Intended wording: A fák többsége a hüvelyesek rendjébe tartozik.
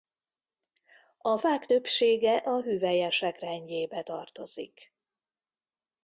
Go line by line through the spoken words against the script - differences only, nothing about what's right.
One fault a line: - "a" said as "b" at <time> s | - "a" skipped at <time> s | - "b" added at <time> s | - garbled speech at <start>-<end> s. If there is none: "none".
none